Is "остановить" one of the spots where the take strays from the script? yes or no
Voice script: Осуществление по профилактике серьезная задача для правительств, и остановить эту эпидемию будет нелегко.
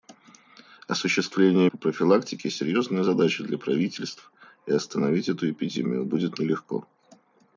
no